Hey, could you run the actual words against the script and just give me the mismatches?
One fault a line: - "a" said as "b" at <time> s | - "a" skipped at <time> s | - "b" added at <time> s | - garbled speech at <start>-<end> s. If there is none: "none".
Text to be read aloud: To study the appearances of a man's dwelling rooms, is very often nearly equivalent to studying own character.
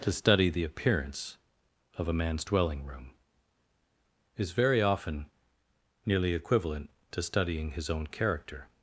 - "appearances" said as "appearance" at 0.6 s
- "rooms" said as "room" at 2.8 s
- "his" added at 7.7 s